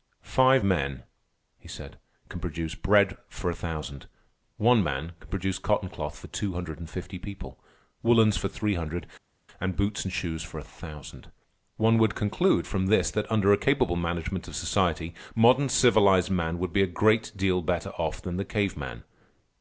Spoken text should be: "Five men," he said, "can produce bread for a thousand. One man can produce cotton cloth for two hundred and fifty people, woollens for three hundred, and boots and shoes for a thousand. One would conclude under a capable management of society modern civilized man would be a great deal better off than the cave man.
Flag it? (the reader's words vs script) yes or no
yes